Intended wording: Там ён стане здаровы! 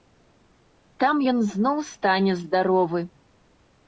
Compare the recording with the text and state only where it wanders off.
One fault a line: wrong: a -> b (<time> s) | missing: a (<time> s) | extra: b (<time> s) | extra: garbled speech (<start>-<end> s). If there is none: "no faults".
extra: зноў (1.5 s)